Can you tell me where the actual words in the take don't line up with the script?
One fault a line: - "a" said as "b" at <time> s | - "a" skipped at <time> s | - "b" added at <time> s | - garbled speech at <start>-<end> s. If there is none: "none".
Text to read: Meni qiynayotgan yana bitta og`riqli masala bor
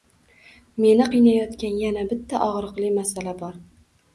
none